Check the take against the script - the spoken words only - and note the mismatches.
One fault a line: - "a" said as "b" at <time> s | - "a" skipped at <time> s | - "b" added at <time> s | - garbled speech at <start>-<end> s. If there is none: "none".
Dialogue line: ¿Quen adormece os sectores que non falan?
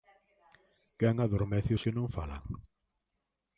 - "sectores" skipped at 1.8 s